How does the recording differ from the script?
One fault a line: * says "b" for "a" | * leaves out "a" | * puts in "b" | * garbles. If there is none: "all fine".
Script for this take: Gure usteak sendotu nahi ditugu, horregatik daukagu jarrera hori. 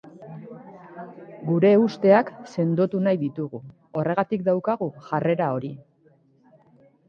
all fine